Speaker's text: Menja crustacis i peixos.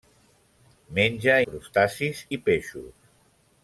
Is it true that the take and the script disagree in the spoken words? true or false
false